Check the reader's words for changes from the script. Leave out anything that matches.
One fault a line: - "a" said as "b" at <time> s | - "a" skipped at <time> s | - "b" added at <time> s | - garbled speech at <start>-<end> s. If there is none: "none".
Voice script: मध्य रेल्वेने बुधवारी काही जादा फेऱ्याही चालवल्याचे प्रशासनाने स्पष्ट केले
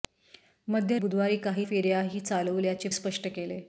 - "रेल्वेने" skipped at 1.0 s
- "जादा" skipped at 1.7 s
- "प्रशासनाने" skipped at 2.9 s